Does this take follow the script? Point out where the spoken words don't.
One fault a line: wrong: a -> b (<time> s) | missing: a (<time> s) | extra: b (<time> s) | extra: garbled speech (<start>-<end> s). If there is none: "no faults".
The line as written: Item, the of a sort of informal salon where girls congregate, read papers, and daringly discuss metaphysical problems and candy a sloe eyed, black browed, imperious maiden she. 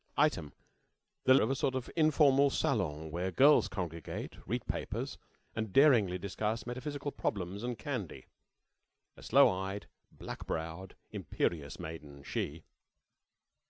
no faults